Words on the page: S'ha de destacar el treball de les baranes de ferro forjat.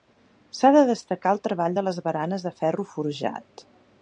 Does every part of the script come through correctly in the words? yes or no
yes